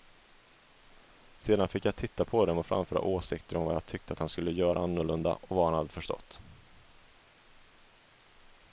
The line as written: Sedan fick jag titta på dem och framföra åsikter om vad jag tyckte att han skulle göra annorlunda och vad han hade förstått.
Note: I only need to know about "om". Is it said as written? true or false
true